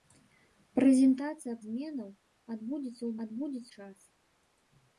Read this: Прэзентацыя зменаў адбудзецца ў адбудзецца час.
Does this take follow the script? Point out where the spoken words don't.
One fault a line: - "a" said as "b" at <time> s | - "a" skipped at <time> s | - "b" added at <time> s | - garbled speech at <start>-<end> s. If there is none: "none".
none